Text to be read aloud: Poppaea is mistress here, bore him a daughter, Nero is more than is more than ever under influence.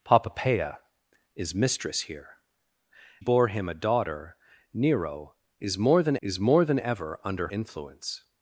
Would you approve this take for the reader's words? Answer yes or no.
yes